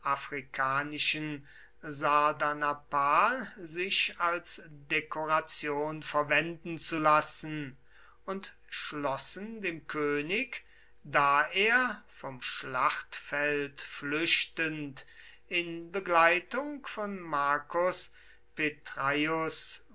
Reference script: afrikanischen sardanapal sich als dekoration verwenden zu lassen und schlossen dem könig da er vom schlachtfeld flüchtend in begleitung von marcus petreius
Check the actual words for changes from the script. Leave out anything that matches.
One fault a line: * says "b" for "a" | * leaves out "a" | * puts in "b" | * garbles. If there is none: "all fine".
all fine